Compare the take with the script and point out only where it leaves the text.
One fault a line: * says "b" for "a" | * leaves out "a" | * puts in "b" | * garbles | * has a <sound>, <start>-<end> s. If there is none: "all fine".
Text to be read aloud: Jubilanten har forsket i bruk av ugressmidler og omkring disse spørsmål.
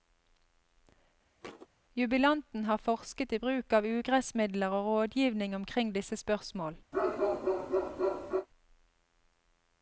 * has a thud, 1.4-1.7 s
* puts in "rådgivning"
* has a bark, 6.9-8.5 s